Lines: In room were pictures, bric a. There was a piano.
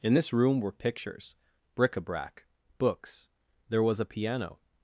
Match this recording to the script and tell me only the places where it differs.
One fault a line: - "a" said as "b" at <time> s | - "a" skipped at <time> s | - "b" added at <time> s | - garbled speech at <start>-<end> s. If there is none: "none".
- "this" added at 0.1 s
- "brac books" added at 2.0 s